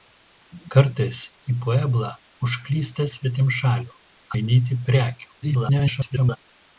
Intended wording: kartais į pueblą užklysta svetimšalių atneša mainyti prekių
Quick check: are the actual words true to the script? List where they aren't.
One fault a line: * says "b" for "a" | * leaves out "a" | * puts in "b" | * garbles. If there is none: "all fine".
* leaves out "atneša"
* garbles